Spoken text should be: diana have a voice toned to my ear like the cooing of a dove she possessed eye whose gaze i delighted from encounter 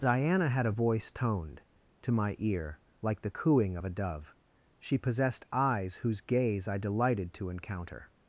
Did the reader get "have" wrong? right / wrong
wrong